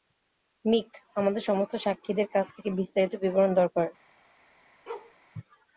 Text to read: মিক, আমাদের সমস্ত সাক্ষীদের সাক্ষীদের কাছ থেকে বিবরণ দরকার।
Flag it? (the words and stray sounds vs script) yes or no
yes